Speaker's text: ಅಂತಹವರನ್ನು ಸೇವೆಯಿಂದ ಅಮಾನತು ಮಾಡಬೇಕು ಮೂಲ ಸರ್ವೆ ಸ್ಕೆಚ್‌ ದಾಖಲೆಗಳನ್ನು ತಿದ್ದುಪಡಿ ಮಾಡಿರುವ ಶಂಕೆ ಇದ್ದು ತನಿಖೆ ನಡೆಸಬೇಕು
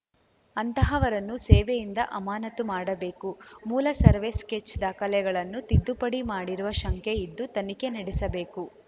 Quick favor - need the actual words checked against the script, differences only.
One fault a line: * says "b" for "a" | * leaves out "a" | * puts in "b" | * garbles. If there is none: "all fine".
all fine